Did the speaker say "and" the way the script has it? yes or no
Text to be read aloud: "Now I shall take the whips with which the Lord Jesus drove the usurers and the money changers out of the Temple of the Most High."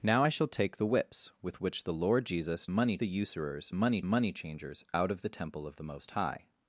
no